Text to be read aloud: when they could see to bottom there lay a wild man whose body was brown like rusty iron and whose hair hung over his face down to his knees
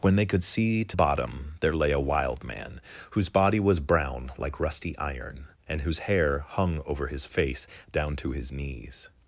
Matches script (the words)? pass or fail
pass